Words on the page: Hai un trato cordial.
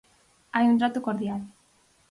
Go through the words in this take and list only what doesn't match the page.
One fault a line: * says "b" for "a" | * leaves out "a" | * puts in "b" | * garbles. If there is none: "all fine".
all fine